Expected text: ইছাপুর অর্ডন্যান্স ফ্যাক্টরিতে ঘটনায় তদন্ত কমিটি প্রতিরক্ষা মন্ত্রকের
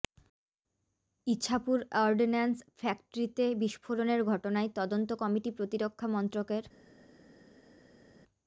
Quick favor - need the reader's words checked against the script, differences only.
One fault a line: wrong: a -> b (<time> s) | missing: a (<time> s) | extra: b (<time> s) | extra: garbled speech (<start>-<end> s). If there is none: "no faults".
extra: বিস্ফোরণের (3.6 s)